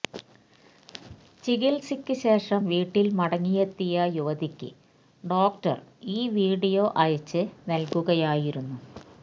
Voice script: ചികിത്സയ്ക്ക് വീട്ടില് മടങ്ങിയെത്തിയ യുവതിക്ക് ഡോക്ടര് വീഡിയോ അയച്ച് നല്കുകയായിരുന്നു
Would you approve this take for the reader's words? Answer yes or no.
no